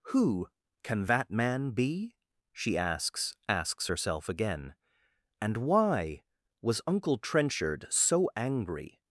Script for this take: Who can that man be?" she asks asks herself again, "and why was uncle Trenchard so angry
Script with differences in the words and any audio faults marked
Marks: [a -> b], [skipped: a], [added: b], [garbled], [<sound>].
Who can that man be?" she asks asks herself again, "and why was uncle Trenchard so angry